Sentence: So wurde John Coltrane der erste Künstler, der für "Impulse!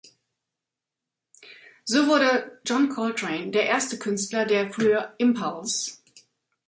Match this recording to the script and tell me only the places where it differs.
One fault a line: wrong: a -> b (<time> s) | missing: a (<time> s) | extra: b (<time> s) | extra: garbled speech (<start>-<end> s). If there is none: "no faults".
no faults